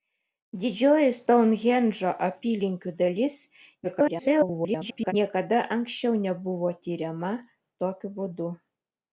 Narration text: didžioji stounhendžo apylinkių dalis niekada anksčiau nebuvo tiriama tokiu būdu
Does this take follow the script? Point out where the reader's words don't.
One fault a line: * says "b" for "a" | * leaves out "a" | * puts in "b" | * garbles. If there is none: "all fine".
* garbles